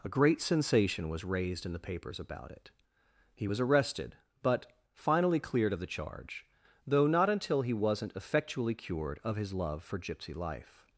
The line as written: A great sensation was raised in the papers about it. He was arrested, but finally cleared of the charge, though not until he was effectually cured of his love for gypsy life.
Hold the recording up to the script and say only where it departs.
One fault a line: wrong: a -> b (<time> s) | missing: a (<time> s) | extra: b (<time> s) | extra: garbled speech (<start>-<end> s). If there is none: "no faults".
wrong: was -> wasn't (7.7 s)